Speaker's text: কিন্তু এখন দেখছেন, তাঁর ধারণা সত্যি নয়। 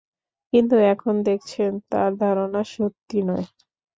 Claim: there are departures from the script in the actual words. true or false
false